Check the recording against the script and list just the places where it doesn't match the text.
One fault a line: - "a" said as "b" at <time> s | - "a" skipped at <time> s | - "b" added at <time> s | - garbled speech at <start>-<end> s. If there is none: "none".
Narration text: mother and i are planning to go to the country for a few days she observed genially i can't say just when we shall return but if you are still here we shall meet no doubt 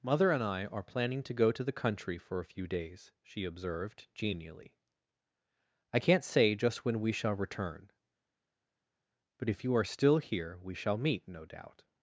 none